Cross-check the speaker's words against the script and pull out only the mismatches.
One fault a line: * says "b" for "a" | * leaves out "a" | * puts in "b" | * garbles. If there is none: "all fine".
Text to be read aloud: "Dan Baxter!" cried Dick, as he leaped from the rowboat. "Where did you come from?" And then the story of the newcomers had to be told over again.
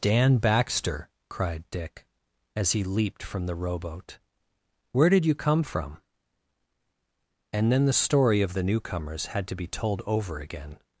all fine